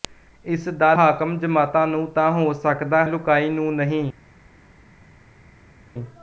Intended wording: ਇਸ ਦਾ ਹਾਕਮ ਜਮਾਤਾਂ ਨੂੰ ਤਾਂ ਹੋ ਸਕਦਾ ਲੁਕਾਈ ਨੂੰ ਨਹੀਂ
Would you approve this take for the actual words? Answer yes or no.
yes